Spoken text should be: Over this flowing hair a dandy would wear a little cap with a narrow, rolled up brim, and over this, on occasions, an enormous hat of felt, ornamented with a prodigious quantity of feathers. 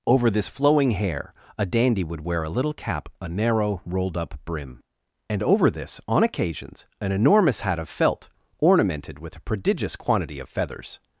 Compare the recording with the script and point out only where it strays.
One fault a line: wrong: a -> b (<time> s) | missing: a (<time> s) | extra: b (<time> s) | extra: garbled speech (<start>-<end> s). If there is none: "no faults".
missing: with (3.1 s)